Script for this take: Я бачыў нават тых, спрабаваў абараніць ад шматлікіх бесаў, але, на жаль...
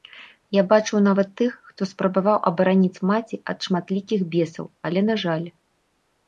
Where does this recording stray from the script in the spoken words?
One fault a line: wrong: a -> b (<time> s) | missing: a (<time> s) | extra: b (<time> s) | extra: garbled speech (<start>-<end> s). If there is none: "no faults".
extra: хто (1.7 s)
extra: маці (3.1 s)